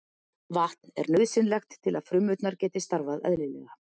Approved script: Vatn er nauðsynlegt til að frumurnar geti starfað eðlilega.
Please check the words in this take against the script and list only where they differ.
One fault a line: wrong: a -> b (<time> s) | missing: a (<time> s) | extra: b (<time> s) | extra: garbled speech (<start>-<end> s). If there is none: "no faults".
no faults